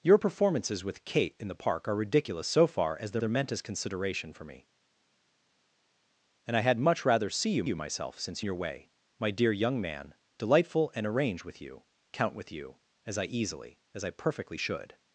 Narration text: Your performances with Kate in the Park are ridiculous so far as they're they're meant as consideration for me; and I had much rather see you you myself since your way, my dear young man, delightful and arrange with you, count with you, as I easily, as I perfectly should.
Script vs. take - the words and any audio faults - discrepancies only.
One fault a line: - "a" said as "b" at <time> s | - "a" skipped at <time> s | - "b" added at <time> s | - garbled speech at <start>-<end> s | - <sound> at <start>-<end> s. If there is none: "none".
none